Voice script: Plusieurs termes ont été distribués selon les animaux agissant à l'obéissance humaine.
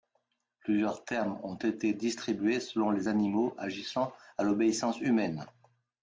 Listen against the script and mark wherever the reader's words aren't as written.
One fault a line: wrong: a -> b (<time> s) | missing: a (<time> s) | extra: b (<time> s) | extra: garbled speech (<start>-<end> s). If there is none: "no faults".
no faults